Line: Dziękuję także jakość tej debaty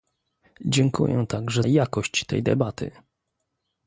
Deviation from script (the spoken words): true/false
false